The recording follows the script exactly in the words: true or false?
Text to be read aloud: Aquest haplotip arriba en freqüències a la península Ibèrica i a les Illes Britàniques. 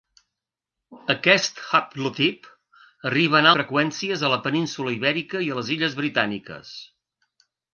true